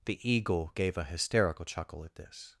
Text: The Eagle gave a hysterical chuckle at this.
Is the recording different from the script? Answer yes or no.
no